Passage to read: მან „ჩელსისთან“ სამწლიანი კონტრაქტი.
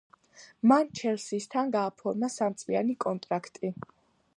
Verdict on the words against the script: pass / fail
fail